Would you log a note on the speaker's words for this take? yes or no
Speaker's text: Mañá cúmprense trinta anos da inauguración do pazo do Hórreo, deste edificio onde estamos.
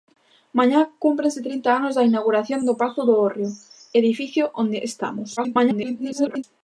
yes